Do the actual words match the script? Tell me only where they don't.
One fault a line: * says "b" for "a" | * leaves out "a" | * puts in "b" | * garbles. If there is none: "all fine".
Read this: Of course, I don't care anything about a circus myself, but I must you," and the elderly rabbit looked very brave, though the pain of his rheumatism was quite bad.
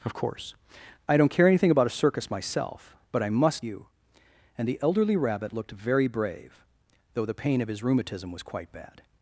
all fine